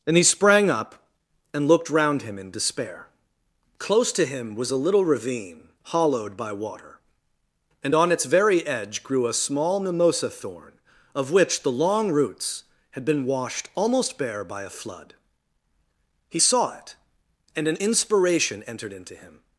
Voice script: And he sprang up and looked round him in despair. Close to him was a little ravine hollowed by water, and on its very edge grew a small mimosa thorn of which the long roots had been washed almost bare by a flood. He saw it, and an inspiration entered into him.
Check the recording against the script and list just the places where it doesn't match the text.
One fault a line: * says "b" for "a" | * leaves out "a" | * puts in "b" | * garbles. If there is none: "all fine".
all fine